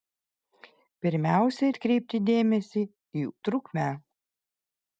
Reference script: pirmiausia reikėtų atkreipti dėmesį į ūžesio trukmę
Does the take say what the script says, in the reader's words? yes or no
no